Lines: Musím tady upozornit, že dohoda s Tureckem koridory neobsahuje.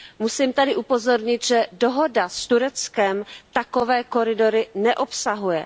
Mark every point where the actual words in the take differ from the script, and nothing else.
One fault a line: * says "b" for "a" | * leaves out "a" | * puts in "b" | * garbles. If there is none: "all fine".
* puts in "takové"